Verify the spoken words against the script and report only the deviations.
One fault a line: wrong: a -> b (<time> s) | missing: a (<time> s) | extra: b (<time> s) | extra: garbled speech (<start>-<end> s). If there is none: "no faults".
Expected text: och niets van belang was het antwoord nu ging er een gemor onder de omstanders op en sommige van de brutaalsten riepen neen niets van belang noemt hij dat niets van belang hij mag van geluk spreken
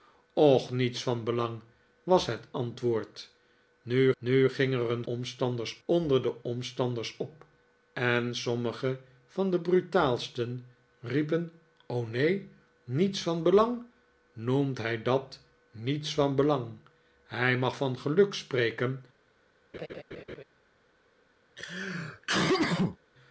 extra: nu (4.2 s)
wrong: gemor -> omstanders (5.0 s)